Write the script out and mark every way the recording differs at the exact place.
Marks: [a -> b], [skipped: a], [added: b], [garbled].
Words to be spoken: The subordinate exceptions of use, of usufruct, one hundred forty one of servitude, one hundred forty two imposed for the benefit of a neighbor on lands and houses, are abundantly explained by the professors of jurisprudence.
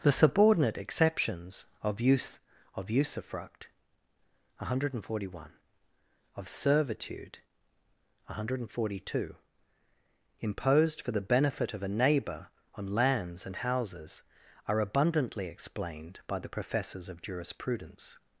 The subordinate exceptions of use, of usufruct, one hundred forty one of servitude, one hundred forty two imposed for the benefit of a neighbor on lands and houses, are abundantly explained by the professors of jurisprudence.